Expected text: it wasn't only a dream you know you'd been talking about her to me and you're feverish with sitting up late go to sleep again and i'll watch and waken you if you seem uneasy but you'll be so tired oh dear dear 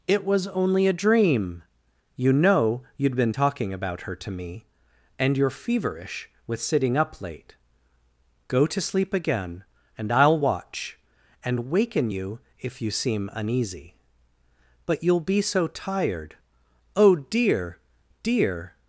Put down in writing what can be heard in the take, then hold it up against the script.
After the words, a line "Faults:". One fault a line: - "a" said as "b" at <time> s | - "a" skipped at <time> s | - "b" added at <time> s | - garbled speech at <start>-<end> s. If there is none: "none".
it was only a dream you know you'd been talking about her to me and you're feverish with sitting up late go to sleep again and i'll watch and waken you if you seem uneasy but you'll be so tired oh dear dear
Faults:
- "wasn't" said as "was" at 0.2 s